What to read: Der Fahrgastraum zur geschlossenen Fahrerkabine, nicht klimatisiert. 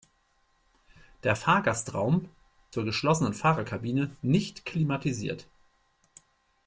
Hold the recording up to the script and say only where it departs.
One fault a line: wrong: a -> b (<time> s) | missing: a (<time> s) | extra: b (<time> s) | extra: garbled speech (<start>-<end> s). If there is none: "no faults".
no faults